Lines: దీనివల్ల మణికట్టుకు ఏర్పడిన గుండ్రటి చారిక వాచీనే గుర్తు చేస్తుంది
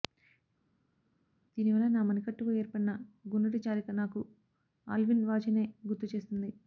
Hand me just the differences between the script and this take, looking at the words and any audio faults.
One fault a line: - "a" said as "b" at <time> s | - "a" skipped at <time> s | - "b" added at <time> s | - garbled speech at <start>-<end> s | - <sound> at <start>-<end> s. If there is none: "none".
- "నా" added at 1.9 s
- "నాకు ఆల్విన్" added at 4.0 s